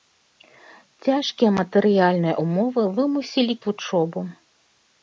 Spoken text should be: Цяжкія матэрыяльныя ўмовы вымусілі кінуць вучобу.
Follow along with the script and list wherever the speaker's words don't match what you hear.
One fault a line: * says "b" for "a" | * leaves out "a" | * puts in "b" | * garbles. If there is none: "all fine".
* leaves out "кінуць"